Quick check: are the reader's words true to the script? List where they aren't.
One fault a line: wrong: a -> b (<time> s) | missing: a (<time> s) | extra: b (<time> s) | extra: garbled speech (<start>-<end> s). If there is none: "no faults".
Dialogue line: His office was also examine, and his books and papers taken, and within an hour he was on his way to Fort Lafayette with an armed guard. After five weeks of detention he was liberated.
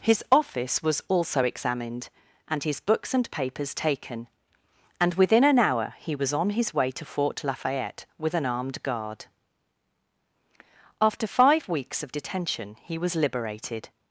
wrong: examine -> examined (1.4 s)